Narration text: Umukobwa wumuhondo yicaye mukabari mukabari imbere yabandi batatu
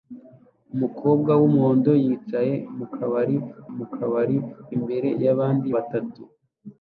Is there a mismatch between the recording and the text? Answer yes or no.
no